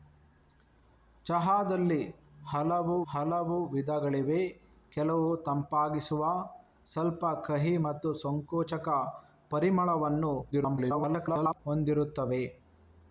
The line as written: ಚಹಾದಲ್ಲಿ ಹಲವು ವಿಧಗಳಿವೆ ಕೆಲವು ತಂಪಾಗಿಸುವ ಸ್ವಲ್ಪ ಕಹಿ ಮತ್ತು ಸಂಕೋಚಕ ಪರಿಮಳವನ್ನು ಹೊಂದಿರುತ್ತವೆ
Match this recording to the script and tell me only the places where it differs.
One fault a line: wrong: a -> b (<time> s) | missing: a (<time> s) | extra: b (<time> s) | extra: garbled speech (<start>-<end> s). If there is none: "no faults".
extra: ಹಲವು (3.1 s)
extra: garbled speech (10.5-11.6 s)